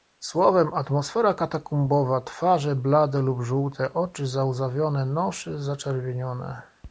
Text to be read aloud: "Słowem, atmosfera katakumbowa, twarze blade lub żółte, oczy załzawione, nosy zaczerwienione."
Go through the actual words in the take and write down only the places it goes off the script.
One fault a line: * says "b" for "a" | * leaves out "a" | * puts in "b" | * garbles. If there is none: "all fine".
all fine